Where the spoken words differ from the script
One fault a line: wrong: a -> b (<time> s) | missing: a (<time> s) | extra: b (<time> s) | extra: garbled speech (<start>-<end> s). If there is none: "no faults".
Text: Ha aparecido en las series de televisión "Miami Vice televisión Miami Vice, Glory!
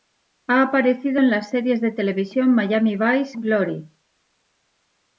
missing: televisión Miami Vice (3.3 s)